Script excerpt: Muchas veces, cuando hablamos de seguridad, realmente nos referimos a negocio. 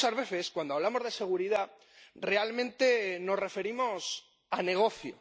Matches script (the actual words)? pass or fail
pass